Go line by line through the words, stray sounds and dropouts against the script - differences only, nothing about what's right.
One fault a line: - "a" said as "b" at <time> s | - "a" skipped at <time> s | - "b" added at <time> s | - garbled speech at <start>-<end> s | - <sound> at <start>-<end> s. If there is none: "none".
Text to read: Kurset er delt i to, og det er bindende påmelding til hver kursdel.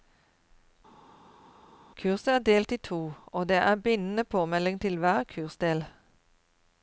none